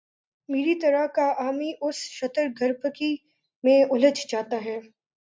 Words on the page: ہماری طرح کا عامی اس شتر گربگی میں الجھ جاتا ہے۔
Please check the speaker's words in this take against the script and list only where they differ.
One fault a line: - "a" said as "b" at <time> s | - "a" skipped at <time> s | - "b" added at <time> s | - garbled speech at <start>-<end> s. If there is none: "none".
- "ہماری" said as "میری" at 0.5 s